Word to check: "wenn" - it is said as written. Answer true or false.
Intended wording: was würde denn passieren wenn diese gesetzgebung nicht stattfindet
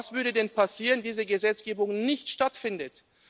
false